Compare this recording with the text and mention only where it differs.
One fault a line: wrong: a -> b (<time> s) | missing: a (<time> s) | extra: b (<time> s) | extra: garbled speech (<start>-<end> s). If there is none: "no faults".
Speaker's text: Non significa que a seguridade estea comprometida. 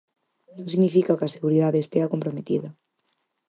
no faults